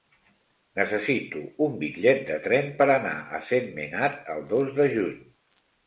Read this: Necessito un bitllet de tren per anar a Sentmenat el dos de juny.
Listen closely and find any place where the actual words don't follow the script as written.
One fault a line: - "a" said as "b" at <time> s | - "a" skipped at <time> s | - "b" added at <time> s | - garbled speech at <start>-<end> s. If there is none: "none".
none